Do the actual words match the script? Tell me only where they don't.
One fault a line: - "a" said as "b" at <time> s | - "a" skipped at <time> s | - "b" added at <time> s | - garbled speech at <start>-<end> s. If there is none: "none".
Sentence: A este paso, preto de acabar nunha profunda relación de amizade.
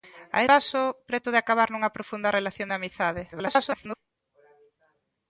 - "este" skipped at 0.4 s
- garbled speech at 3.3-4.0 s